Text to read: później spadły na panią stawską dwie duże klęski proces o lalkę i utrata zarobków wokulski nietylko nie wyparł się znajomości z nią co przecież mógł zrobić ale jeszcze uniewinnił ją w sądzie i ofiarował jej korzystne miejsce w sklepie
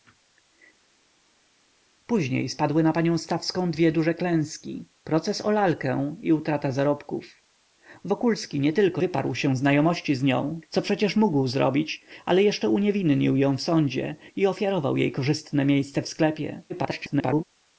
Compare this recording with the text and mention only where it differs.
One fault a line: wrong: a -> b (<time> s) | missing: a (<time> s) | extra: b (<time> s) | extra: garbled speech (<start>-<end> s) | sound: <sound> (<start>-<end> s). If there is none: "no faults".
missing: nie (9.0 s)
extra: garbled speech (16.7-17.4 s)